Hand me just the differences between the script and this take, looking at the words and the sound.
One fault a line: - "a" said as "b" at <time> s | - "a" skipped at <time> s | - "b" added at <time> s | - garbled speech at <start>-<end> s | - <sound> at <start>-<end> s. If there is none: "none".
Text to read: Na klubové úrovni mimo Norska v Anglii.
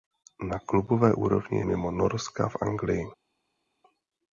none